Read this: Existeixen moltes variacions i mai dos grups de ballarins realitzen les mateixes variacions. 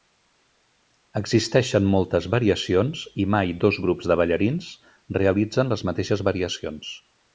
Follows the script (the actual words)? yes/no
yes